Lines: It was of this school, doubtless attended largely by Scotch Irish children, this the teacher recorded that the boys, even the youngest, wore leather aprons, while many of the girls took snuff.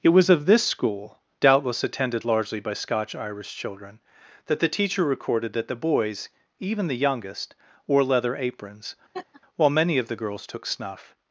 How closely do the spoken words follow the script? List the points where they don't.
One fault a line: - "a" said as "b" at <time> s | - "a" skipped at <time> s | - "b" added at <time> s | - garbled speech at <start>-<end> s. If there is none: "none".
- "this" said as "that" at 4.5 s